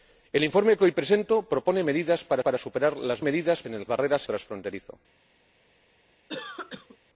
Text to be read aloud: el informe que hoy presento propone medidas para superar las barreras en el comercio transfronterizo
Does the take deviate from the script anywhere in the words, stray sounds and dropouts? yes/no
yes